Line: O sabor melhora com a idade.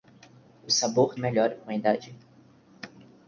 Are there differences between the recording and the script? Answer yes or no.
no